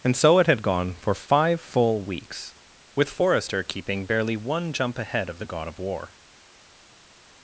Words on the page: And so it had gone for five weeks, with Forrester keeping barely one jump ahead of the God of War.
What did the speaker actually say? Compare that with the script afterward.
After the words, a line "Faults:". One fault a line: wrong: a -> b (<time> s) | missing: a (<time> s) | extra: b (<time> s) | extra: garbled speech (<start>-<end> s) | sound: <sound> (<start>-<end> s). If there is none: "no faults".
And so it had gone for five full weeks, with Forrester keeping barely one jump ahead of the God of War.
Faults:
extra: full (1.6 s)